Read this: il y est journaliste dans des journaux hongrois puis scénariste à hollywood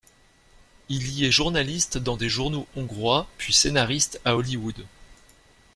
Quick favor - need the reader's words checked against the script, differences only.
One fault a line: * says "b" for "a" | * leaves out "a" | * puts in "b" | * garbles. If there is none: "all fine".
all fine